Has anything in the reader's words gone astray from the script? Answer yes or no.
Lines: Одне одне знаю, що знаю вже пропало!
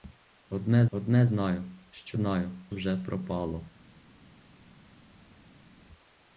no